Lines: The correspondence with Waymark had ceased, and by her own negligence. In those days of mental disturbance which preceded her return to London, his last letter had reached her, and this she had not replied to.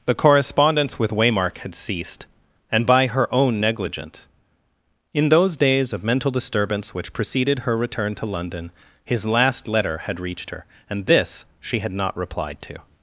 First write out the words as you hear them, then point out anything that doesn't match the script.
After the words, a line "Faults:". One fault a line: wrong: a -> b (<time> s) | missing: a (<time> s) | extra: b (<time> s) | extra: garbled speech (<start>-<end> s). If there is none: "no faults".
The correspondence with Waymark had ceased, and by her own negligence. In those days of mental disturbance which preceded her return to London, his last letter had reached her, and this she had not replied to.
Faults:
no faults